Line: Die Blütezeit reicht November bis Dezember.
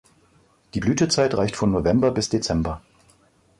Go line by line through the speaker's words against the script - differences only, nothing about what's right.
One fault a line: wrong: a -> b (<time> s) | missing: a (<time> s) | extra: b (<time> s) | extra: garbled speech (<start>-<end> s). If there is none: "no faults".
extra: von (1.5 s)